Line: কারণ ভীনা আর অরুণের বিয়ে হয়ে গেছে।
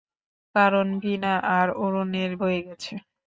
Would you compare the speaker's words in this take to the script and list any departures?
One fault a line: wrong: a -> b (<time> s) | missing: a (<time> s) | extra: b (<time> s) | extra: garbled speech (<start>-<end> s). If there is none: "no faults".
missing: বিয়ে (2.3 s)